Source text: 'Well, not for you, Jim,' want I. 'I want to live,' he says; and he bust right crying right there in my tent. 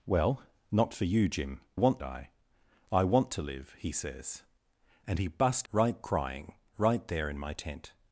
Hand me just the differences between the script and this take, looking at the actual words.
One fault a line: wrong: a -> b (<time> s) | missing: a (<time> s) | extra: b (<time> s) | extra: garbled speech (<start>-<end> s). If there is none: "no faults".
no faults